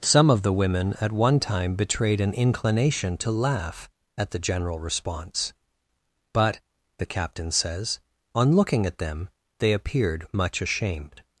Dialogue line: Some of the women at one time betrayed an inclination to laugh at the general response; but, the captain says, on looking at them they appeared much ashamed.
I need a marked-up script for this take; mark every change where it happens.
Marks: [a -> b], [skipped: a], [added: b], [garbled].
Some of the women at one time betrayed an inclination to laugh at the general response; but, the captain says, on looking at them they appeared much ashamed.